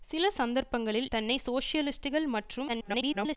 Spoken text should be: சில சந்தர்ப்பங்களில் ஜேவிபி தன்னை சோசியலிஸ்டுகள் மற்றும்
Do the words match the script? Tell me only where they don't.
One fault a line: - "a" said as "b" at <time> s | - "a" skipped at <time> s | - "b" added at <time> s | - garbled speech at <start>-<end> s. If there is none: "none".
- "ஜேவிபி" skipped at 1.1 s
- garbled speech at 2.7-3.4 s